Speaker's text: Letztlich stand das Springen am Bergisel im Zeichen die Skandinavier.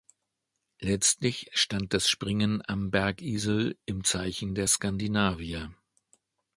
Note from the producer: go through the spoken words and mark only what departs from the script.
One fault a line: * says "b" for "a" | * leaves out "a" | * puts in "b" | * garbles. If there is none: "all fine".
* says "der" for "die"